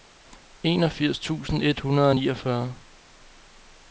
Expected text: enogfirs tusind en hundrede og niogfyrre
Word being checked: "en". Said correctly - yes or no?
no